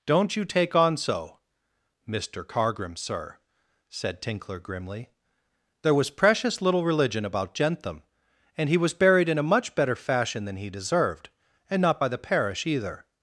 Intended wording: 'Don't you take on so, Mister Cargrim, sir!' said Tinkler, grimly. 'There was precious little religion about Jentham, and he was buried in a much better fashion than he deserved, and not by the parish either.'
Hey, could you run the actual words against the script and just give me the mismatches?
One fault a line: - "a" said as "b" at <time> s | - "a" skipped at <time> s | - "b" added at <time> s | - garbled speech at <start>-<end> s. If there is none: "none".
none